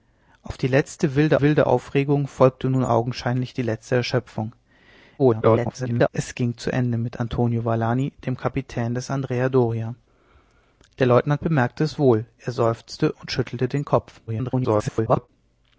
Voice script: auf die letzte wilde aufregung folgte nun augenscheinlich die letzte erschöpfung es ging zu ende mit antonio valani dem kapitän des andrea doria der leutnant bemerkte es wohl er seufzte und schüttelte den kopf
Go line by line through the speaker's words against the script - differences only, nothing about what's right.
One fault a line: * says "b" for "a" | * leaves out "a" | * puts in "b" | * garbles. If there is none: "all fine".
* puts in "wilde"
* garbles
* garbles